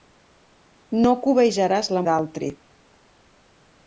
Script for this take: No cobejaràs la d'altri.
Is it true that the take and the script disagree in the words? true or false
false